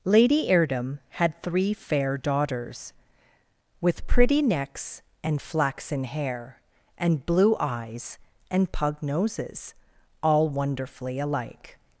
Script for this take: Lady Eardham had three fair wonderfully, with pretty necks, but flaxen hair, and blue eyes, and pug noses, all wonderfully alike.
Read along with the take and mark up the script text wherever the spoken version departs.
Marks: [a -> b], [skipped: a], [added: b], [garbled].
Lady Eardham had three fair [wonderfully, -> daughters] with pretty necks, [but -> and] flaxen hair, and blue eyes, and pug noses, all wonderfully alike.